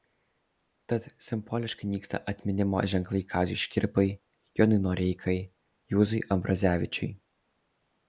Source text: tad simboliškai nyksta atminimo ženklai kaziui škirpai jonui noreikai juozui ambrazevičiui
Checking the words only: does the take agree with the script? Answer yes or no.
yes